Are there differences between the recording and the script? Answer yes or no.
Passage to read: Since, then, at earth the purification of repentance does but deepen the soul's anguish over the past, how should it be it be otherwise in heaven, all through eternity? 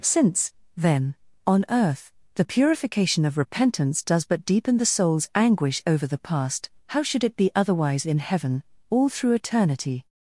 yes